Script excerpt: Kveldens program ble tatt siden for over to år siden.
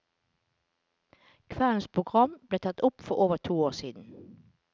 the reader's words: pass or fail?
fail